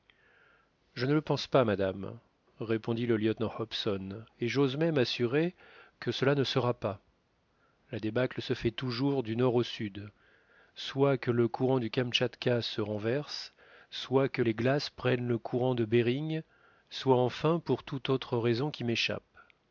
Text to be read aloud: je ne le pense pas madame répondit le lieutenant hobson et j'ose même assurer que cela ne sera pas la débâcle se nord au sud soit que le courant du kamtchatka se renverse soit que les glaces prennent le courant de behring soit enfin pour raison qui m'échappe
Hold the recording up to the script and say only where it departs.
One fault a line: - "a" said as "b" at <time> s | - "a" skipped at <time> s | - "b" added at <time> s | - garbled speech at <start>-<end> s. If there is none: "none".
- "fait toujours du" added at 8.6 s
- "toute autre" added at 17.8 s